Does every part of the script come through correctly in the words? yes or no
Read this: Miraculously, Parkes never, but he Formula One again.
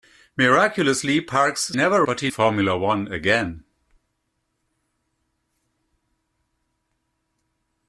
yes